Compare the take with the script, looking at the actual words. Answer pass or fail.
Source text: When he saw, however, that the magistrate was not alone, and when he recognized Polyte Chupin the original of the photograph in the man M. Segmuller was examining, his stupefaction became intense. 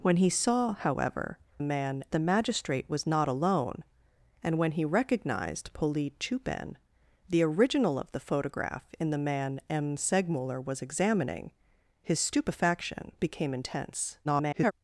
fail